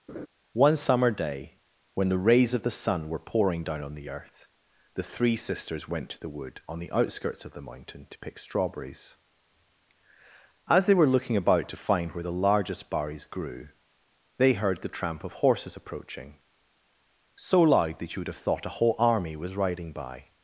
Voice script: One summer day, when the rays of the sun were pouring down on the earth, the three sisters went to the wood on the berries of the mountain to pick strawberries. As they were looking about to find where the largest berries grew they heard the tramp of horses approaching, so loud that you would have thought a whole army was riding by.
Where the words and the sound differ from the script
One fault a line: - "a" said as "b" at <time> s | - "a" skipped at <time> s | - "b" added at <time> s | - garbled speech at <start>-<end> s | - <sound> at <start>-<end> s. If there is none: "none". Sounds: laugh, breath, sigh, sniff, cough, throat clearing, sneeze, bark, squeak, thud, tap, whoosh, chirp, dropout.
- laugh at 0.1-0.3 s
- "berries" said as "outskirts" at 6.9 s